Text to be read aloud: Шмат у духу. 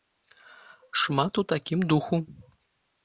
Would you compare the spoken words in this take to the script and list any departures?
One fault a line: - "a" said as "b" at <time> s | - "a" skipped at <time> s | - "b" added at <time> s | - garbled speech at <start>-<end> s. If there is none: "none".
- "такім" added at 1.5 s